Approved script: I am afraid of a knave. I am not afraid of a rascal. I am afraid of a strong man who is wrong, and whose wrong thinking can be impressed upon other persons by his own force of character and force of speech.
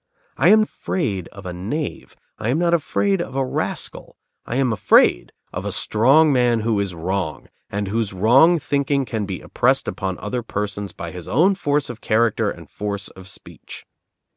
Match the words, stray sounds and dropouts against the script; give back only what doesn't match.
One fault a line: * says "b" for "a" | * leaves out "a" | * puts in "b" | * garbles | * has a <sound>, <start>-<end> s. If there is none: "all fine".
all fine